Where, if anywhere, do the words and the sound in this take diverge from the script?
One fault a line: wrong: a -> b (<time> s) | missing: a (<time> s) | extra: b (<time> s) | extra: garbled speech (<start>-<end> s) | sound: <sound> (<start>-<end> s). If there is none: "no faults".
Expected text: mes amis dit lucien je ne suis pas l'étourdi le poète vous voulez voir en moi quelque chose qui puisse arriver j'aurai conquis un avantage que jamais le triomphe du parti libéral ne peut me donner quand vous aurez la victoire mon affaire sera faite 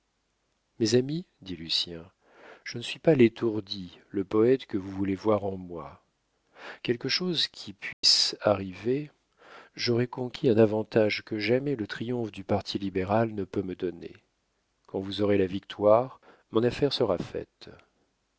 extra: que (4.7 s)
sound: dropout (7.9-8.0 s)